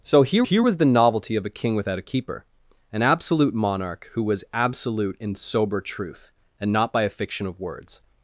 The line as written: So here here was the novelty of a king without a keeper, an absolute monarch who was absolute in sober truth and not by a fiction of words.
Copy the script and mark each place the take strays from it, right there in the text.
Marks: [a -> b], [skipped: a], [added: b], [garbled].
So here here was the novelty of a king without a keeper, an absolute monarch who was absolute in sober truth and not by a fiction of words.